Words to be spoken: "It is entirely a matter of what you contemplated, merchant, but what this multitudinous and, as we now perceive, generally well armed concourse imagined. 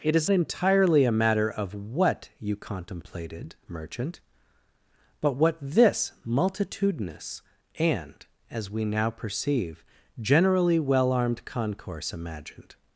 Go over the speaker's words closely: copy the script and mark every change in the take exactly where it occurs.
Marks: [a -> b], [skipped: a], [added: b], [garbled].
"It is entirely a matter of what you contemplated, merchant, but what this multitudinous and, as we now perceive, generally well armed concourse imagined.